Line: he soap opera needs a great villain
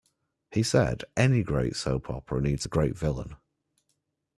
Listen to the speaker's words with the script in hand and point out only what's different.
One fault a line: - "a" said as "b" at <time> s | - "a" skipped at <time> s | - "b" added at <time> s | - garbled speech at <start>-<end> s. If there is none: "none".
- "said any great" added at 0.6 s